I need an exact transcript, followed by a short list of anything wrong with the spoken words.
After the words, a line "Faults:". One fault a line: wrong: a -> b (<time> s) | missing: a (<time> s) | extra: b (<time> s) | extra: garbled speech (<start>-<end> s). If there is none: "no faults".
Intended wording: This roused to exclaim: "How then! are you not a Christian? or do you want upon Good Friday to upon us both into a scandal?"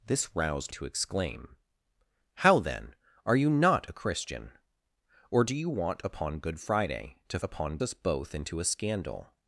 This roused to exclaim: "How then! are you not a Christian? or do you want upon Good Friday to upon us both into a scandal?"
Faults:
no faults